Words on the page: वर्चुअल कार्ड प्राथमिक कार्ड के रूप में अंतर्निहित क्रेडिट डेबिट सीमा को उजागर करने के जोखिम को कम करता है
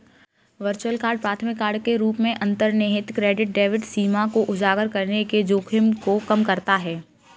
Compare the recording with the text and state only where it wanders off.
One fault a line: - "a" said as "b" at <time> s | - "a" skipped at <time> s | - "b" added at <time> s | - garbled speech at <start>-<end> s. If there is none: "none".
none